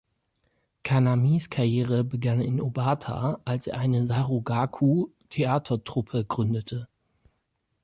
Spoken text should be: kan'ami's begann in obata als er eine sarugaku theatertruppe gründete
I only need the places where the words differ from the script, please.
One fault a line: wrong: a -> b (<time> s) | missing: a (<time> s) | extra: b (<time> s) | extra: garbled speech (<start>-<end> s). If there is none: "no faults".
extra: karriere (1.5 s)